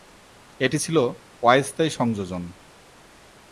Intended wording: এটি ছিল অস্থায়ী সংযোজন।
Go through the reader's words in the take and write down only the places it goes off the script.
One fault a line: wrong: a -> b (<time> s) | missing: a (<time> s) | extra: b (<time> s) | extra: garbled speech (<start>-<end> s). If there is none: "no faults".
no faults